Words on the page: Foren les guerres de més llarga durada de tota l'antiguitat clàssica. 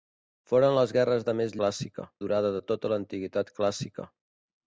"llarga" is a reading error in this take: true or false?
true